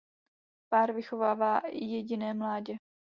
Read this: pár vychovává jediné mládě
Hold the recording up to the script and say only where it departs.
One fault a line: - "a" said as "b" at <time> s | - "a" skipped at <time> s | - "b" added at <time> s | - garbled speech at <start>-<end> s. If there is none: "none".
none